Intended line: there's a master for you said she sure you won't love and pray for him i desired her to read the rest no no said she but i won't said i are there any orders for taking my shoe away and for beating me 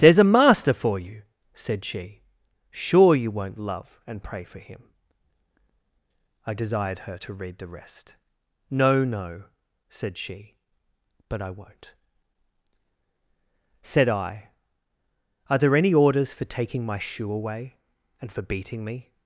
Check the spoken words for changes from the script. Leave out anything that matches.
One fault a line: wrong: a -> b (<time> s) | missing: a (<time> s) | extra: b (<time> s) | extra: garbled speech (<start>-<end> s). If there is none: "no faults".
no faults